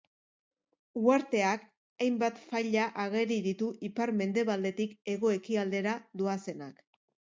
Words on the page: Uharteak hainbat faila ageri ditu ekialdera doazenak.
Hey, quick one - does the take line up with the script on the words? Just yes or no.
no